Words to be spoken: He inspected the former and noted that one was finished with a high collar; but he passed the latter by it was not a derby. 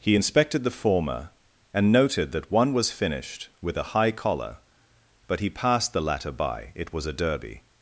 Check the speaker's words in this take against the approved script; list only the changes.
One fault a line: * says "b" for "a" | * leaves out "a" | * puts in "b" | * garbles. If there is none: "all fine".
* leaves out "not"